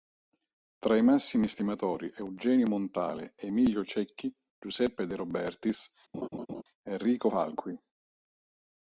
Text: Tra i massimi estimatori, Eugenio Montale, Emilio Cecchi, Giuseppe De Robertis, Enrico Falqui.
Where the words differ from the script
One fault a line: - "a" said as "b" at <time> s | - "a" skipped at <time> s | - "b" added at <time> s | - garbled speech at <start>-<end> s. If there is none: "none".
none